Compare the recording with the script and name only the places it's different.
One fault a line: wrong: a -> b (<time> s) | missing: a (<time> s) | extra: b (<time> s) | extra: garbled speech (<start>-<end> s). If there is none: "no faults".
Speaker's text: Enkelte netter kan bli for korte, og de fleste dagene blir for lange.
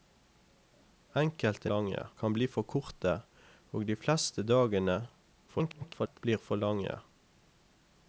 wrong: netter -> lange (1.7 s)
extra: garbled speech (5.5-6.2 s)